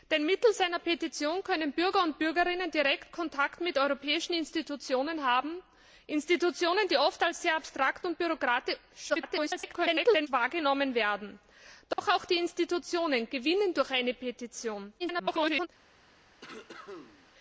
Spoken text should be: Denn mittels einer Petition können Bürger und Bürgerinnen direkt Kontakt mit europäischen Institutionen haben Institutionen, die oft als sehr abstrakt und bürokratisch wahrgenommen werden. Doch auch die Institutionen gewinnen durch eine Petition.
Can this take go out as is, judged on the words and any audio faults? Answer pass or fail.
fail